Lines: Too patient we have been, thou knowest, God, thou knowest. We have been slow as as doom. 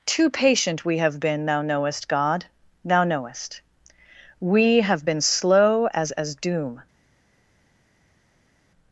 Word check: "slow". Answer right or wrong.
right